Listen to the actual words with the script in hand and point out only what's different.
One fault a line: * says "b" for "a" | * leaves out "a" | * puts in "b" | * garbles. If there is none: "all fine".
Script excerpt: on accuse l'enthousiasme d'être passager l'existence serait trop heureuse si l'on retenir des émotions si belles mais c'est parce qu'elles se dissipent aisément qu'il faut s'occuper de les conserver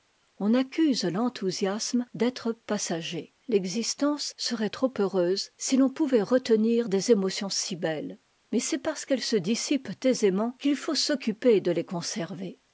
* puts in "pouvait"